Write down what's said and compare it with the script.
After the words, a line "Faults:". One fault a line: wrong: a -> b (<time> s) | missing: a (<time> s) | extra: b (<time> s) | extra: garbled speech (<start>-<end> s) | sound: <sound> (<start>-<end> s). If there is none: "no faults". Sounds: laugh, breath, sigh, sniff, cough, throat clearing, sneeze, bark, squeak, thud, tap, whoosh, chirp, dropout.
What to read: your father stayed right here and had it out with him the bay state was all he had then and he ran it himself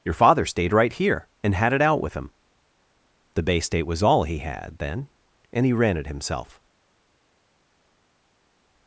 your father stayed right here and had it out with him the bay state was all he had then and he ran it himself
Faults:
no faults